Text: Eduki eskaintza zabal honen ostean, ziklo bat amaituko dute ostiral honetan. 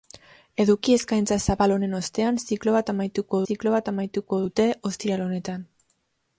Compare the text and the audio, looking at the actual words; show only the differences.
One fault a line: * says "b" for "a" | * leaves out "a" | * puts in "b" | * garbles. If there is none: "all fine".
* puts in "ziklo bat amaituko"